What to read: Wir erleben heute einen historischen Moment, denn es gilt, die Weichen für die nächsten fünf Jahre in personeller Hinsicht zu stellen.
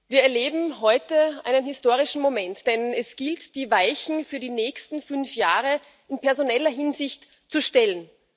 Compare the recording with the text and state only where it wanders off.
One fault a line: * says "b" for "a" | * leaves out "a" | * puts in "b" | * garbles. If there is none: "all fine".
all fine